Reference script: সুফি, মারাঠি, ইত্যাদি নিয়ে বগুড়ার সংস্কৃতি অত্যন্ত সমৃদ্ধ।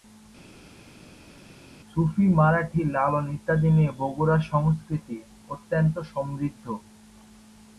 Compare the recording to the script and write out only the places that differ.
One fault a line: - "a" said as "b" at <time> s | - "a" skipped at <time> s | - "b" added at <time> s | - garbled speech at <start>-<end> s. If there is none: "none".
- "লালন" added at 2.9 s